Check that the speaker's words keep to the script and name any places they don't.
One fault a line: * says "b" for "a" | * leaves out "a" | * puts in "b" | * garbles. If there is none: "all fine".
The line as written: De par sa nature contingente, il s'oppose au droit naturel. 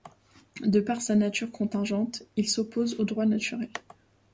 all fine